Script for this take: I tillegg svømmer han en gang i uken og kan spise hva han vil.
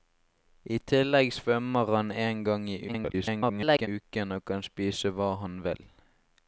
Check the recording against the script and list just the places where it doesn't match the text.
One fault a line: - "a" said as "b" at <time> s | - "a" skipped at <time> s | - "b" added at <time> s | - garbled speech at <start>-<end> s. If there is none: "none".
- garbled speech at 2.9-3.9 s